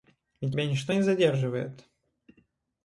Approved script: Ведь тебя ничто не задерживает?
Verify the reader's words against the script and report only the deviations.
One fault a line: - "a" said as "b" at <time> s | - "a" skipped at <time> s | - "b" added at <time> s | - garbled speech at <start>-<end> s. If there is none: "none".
none